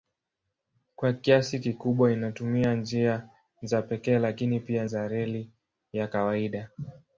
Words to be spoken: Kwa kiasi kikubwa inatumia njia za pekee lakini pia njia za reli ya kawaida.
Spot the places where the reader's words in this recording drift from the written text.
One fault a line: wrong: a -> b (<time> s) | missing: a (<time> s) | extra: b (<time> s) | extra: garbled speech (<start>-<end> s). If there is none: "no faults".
missing: njia (4.8 s)